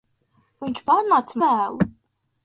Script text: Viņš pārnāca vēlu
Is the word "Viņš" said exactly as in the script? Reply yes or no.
yes